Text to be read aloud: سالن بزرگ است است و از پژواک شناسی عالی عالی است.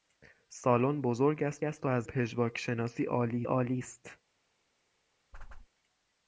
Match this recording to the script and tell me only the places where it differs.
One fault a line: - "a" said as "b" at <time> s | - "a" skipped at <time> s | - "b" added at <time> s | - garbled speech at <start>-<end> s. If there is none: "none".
none